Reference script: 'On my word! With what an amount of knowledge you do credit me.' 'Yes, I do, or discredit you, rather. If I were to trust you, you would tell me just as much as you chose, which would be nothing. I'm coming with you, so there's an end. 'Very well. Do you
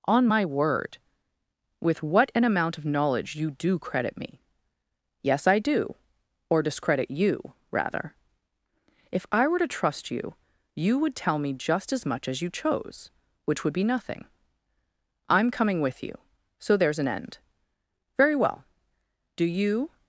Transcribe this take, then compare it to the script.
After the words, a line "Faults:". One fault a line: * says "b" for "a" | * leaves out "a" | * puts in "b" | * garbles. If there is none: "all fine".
'On my word! With what an amount of knowledge you do credit me.' 'Yes, I do, or discredit you, rather. If I were to trust you, you would tell me just as much as you chose, which would be nothing. I'm coming with you, so there's an end. 'Very well. Do you
Faults:
all fine